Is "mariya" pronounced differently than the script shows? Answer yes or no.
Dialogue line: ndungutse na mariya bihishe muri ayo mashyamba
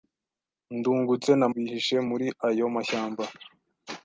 yes